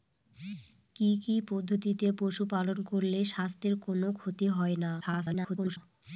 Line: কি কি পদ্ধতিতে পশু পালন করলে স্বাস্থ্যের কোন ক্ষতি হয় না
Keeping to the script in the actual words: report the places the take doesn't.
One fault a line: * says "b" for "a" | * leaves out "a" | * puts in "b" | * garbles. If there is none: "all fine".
* garbles